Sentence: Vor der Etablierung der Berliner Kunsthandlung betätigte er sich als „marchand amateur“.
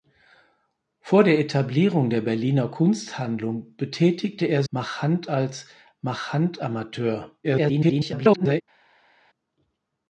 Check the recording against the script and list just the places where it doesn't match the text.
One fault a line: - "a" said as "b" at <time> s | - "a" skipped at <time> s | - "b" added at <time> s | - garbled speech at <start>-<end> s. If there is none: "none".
- "sich" said as "marchand" at 4.7 s
- garbled speech at 7.4-8.6 s